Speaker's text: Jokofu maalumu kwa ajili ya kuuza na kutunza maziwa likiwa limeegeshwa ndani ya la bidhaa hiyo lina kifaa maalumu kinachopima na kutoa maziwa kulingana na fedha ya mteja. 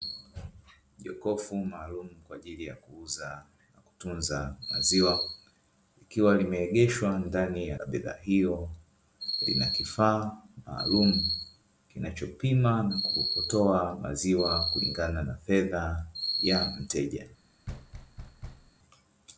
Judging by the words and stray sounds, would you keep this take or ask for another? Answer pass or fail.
fail